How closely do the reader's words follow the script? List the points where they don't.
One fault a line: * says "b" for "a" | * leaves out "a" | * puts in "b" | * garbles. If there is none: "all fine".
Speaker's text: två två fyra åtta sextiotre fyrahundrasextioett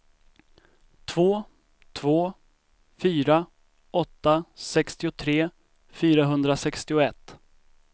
all fine